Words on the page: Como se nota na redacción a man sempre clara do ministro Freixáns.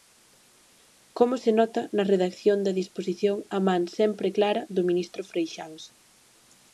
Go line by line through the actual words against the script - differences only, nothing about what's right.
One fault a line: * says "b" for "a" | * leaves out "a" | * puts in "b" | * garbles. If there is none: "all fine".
* puts in "da disposición"